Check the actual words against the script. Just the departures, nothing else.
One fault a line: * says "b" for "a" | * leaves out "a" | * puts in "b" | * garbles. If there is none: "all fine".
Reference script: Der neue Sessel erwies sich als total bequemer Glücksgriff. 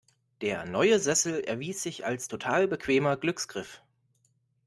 all fine